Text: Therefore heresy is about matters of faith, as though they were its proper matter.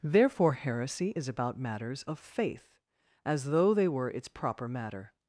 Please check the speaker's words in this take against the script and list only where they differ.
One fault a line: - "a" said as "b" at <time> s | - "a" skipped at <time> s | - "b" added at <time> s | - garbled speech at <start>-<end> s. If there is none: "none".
none